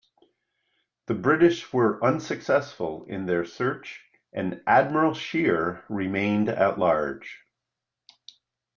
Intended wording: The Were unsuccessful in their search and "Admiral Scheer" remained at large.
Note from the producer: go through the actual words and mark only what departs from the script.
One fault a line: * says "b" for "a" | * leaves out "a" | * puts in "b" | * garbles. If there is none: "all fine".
* puts in "British"